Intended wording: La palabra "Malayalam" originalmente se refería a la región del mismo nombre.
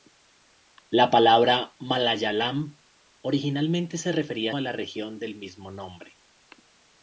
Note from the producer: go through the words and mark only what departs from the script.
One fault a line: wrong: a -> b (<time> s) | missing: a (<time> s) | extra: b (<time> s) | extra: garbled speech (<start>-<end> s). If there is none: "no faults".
no faults